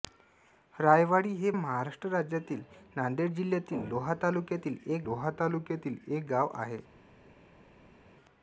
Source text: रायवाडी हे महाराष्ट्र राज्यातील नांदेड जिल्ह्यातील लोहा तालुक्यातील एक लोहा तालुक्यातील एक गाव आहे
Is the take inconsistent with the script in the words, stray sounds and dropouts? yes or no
no